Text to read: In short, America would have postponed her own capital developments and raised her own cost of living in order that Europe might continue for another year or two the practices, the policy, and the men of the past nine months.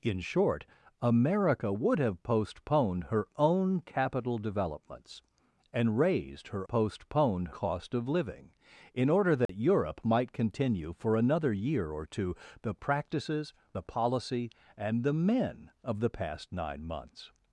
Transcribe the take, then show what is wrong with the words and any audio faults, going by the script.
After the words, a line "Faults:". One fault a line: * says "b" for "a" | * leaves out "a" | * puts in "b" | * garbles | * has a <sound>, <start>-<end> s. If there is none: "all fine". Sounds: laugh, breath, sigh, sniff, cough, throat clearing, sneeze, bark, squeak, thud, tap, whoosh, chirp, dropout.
In short, America would have postponed her own capital developments and raised her postponed cost of living in order that Europe might continue for another year or two the practices, the policy, and the men of the past nine months.
Faults:
* says "postponed" for "own"
* has a dropout, 9.5-9.5 s